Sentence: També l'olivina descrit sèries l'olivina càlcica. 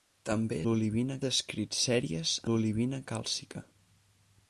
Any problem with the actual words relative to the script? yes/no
no